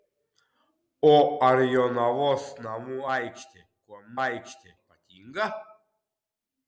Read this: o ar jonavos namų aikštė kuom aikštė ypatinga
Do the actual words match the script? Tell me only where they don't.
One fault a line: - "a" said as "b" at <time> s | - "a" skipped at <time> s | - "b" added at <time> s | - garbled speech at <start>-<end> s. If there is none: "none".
none